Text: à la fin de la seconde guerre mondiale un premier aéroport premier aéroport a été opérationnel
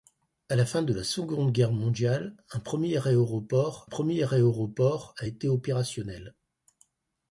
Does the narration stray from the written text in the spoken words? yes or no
no